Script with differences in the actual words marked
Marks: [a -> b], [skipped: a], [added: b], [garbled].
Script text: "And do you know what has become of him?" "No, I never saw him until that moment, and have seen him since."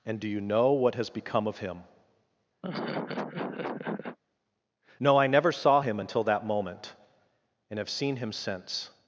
"And do you know what has become of him?" "No, I never saw him until that moment, and have seen him since."